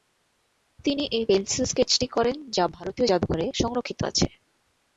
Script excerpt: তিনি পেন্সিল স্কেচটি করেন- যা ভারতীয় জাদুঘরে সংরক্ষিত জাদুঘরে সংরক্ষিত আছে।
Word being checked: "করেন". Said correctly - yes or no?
yes